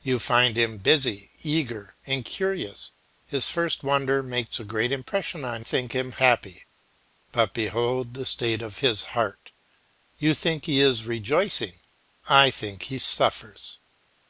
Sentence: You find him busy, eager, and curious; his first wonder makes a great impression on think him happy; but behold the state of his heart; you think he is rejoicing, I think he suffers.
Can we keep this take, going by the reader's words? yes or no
yes